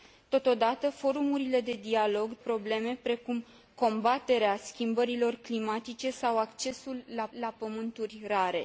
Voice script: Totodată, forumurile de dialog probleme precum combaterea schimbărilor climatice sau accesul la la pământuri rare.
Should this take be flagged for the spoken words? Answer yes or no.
no